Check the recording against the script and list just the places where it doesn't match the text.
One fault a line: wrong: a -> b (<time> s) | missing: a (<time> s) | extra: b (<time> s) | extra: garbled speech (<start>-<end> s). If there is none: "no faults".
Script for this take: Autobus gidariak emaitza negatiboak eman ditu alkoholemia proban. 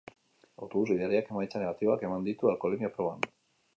no faults